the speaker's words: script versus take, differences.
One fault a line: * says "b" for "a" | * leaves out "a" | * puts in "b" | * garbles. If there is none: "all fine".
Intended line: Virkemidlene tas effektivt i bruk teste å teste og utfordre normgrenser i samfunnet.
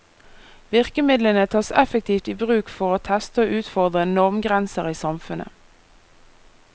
* says "for" for "teste"